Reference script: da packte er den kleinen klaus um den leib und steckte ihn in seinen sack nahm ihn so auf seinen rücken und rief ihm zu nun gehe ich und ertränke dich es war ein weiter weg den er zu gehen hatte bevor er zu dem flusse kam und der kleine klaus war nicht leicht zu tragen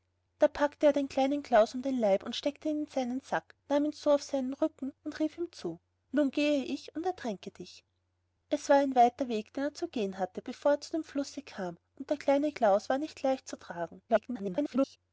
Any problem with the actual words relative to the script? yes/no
yes